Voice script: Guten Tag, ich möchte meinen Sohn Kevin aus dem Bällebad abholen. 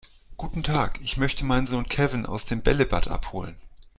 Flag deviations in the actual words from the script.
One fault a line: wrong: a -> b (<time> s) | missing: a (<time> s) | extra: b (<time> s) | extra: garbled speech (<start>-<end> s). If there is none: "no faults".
no faults